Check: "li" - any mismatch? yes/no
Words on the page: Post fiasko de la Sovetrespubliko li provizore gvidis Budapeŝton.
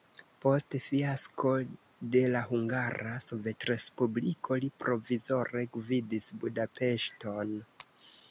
no